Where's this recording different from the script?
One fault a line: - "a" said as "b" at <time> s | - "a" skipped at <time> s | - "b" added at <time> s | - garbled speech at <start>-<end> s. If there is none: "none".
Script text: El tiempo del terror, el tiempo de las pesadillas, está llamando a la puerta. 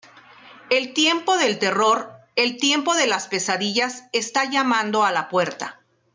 none